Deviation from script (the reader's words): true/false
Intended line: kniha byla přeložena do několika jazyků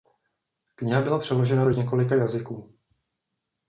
false